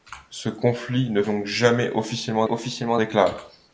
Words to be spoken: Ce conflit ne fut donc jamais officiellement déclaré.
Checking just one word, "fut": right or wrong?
wrong